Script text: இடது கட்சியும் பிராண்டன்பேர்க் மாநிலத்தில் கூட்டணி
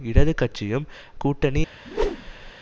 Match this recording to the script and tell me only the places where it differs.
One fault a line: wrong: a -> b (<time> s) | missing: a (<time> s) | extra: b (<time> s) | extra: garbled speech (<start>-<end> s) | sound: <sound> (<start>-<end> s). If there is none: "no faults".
missing: பிராண்டன்பேர்க் மாநிலத்தில் (0.8 s)
sound: whoosh (1.8-2.5 s)